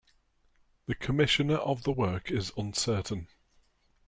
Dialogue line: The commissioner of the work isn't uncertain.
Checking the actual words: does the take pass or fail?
fail